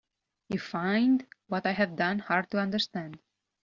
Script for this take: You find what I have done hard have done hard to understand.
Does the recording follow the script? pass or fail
fail